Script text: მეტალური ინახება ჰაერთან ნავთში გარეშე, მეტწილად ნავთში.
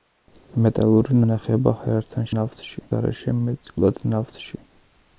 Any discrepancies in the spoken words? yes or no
no